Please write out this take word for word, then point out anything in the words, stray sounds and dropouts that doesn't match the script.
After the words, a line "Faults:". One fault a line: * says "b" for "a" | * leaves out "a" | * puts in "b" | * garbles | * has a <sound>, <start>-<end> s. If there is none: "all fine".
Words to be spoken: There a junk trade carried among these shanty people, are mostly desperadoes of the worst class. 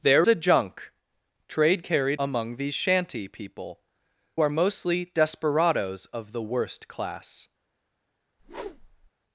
There a junk trade carried among these shanty people, are mostly desperadoes of the worst class.
Faults:
* has a whoosh, 8.4-9.1 s